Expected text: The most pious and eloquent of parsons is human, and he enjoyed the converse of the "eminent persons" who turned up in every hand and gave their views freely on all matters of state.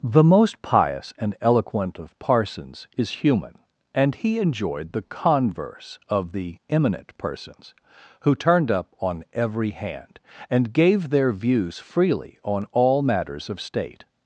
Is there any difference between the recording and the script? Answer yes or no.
yes